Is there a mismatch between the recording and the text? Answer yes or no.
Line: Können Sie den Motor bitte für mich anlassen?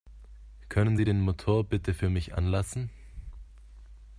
no